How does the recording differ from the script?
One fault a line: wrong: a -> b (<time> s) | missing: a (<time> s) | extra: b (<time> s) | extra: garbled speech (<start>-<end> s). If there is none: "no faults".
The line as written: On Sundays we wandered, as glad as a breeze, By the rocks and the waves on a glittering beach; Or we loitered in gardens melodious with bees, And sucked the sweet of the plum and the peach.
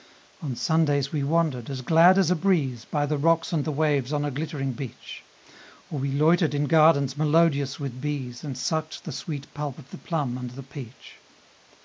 extra: pulp (9.5 s)